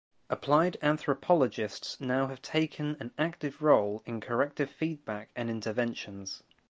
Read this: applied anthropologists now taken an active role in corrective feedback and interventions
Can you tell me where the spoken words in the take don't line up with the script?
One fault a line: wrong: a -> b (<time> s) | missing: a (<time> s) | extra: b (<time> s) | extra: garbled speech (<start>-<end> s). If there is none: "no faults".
extra: have (2.3 s)